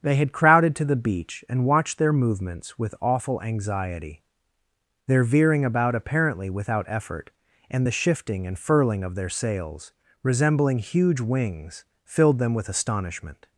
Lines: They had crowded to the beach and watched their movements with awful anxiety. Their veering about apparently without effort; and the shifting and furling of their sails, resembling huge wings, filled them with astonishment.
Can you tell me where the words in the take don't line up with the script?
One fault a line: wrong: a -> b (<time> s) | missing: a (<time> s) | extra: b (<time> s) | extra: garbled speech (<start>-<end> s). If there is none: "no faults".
no faults